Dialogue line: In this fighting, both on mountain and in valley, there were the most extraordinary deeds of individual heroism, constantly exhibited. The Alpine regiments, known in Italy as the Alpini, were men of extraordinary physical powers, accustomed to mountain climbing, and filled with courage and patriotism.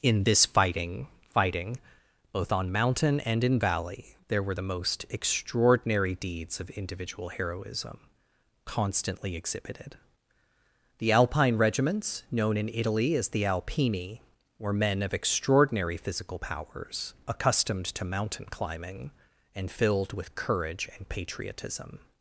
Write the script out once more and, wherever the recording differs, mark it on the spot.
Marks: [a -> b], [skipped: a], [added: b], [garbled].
In this fighting, [added: fighting] both on mountain and in valley, there were the most extraordinary deeds of individual heroism, constantly exhibited. The Alpine regiments, known in Italy as the Alpini, were men of extraordinary physical powers, accustomed to mountain climbing, and filled with courage and patriotism.